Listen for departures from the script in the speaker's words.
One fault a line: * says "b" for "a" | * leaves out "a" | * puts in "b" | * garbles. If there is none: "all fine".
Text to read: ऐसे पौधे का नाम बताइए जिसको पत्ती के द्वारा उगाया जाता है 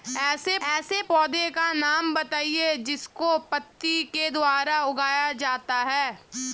* puts in "ऐसे"